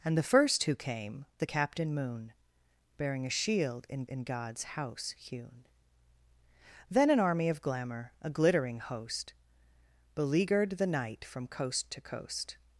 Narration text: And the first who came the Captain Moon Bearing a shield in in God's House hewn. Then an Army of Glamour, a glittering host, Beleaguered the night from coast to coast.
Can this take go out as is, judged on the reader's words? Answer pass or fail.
pass